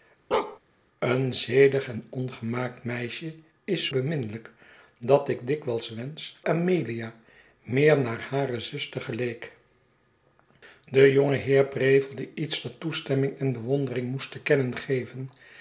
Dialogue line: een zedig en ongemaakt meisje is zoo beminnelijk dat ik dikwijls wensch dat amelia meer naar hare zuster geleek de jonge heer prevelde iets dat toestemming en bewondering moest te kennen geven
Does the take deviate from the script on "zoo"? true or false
true